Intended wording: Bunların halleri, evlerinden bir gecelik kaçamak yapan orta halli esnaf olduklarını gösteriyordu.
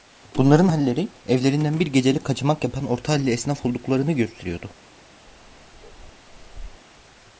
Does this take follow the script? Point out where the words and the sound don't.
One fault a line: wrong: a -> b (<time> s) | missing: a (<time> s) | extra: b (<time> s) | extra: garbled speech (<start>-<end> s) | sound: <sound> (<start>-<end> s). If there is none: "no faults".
sound: bark (5.3-6.8 s)